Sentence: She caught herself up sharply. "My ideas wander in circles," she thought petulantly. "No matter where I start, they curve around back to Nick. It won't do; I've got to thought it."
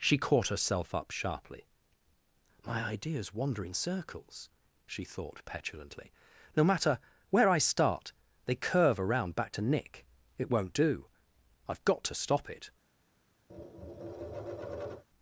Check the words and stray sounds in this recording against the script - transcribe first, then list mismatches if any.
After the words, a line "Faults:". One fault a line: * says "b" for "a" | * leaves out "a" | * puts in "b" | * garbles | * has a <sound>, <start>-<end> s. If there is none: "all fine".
She caught herself up sharply. "My ideas wander in circles," she thought petulantly. "No matter where I start, they curve around back to Nick. It won't do; I've got to stop it."
Faults:
* says "stop" for "thought"
* has a tap, 13.5-15.0 s